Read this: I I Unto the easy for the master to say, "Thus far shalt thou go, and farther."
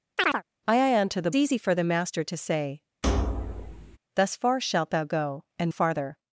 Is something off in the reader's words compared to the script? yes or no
no